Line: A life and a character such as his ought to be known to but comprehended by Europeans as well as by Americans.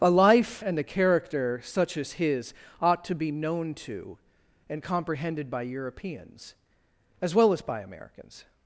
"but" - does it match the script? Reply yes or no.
no